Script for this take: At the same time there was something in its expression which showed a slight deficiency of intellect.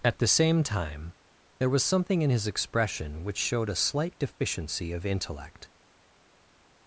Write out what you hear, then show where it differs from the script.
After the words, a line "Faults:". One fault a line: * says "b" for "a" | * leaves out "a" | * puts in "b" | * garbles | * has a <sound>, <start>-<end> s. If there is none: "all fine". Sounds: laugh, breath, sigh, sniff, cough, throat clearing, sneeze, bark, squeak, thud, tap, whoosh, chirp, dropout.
At the same time there was something in his expression which showed a slight deficiency of intellect.
Faults:
* says "his" for "its"